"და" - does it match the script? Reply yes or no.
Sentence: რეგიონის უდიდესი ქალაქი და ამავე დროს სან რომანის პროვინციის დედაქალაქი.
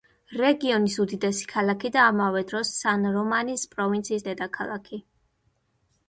yes